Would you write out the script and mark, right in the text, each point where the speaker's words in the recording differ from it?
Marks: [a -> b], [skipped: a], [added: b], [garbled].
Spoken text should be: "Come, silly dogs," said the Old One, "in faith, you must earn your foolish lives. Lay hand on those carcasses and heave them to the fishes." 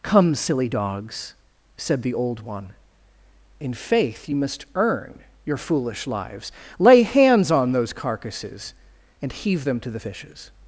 "Come, silly dogs," said the Old One, "in faith, you must earn your foolish lives. Lay [hand -> hands] on those carcasses and heave them to the fishes."